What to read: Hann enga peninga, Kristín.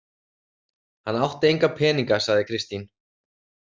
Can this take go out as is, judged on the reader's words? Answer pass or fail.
fail